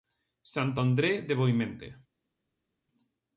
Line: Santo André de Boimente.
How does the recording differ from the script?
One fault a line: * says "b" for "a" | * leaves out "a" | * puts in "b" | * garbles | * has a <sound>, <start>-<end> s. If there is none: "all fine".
all fine